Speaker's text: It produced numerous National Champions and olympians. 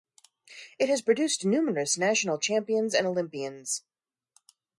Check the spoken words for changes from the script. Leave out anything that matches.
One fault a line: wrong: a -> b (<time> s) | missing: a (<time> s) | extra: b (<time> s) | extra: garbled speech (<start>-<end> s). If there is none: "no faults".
extra: has (0.9 s)